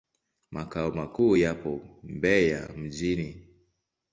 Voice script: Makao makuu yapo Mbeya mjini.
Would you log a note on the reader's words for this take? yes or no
no